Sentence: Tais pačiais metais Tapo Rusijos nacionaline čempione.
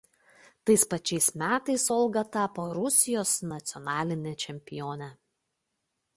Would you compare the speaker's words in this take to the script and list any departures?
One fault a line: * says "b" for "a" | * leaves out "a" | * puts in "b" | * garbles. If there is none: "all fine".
* puts in "Olga"